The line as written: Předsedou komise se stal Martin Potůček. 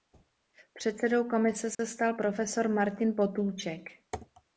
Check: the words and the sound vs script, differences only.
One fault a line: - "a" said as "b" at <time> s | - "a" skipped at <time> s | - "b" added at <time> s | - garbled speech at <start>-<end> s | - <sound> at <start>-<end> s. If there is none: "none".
- dropout at 1.7-1.8 s
- "profesor" added at 2.1 s